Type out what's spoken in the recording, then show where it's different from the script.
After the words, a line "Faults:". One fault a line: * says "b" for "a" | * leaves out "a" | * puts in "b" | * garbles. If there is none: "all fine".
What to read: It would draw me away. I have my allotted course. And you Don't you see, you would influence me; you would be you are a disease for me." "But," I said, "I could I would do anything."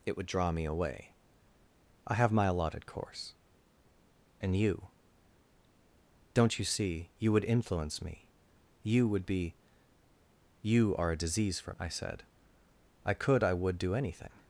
It would draw me away. I have my allotted course. And you Don't you see, you would influence me; you would be you are a disease for," I said, "I could I would do anything."
Faults:
* leaves out "me But"